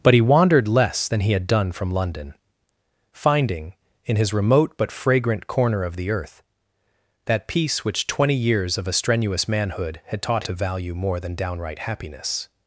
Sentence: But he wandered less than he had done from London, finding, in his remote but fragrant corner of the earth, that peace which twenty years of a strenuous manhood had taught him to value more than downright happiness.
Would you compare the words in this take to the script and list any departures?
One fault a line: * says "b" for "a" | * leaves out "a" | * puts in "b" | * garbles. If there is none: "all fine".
* leaves out "him"